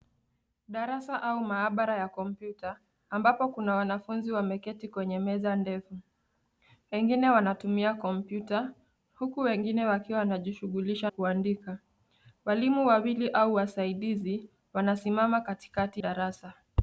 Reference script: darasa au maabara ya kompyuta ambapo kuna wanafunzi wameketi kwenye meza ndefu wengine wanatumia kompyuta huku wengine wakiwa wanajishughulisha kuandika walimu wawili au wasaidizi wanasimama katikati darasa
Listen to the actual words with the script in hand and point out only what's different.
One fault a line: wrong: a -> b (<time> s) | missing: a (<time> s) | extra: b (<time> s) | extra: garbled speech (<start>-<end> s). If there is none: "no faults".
no faults